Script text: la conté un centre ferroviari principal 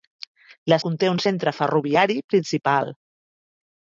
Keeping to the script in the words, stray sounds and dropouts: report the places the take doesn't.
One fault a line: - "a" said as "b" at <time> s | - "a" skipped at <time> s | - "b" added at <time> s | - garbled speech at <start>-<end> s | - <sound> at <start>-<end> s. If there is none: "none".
none